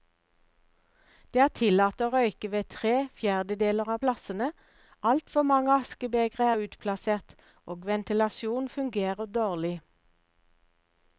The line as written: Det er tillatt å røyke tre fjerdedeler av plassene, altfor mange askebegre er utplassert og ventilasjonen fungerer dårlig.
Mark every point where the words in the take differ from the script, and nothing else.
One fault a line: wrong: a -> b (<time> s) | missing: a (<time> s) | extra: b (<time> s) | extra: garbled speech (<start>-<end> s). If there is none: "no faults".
extra: ved (2.5 s)